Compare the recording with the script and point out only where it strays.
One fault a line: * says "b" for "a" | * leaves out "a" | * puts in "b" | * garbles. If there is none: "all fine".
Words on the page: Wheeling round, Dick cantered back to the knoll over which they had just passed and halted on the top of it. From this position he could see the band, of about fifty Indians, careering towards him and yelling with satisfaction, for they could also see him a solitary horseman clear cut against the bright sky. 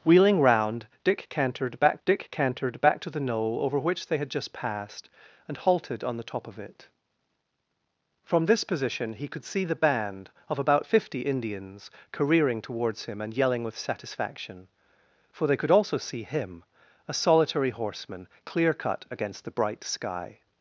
* puts in "Dick cantered back"